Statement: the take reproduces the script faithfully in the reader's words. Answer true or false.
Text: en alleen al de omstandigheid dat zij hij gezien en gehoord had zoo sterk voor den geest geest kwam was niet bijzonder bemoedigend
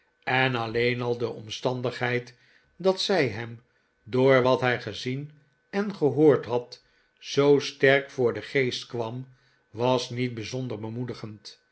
false